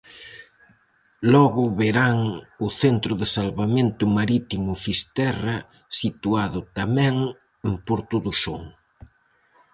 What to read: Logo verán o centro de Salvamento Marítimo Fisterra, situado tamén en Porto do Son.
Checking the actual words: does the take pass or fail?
pass